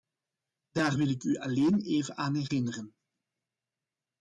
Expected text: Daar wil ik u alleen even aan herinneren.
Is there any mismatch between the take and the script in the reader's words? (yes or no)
no